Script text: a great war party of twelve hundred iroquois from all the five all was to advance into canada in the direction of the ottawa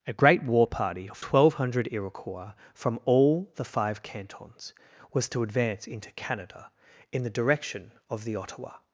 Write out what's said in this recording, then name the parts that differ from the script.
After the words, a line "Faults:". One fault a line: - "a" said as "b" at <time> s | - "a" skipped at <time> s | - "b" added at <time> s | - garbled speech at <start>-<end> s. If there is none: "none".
a great war party of twelve hundred iroquois from all the five cantons was to advance into canada in the direction of the ottawa
Faults:
- "all" said as "cantons" at 4.0 s